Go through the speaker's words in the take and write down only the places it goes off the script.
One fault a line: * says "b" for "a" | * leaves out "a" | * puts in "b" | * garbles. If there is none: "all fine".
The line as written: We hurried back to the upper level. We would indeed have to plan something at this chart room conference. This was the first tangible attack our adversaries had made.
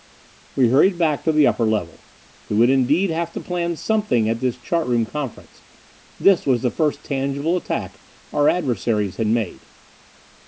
all fine